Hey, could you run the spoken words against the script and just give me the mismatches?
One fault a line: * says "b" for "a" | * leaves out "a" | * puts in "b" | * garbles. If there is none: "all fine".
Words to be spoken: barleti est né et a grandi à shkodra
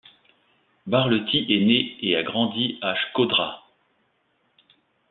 all fine